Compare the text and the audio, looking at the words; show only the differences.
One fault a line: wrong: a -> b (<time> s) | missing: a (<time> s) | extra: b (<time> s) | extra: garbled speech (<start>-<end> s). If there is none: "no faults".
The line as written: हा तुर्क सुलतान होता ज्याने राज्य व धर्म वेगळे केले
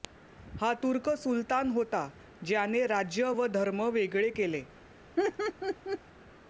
no faults